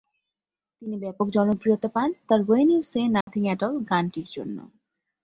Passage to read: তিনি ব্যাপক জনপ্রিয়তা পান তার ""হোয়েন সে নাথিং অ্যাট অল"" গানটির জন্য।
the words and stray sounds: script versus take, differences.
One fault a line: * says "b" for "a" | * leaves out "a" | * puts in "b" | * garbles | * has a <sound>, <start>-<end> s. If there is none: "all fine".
* puts in "ইউ"
* has a dropout, 3.2-3.3 s